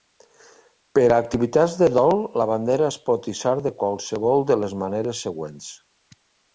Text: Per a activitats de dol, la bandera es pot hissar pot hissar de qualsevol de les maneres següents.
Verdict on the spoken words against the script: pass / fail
fail